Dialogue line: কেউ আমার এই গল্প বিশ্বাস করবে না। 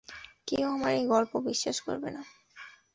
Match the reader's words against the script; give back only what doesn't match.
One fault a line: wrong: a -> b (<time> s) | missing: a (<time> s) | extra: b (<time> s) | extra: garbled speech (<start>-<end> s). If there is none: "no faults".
no faults